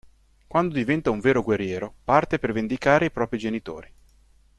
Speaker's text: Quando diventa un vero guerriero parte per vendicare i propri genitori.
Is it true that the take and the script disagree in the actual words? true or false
false